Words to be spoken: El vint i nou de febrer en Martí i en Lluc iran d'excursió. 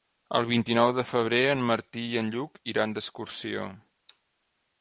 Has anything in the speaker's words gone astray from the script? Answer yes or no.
no